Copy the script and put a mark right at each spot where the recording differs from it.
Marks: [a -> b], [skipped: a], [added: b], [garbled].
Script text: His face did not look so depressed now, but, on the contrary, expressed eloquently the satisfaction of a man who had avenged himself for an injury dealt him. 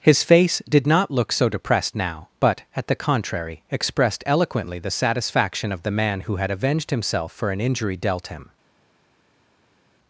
His face did not look so depressed now, but, [on -> at] the contrary, expressed eloquently the satisfaction of [a -> the] man who had avenged himself for an injury dealt him.